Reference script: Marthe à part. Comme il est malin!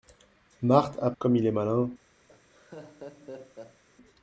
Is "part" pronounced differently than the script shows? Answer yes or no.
yes